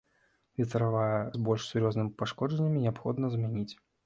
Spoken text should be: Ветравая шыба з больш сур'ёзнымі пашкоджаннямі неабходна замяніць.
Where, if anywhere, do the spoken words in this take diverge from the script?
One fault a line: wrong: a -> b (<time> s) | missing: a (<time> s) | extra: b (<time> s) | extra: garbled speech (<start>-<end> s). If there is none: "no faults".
missing: шыба (1.2 s)